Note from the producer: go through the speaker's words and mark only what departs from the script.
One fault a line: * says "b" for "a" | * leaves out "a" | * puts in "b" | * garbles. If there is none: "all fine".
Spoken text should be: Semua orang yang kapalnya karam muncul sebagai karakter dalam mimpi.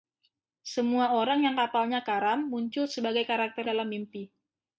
all fine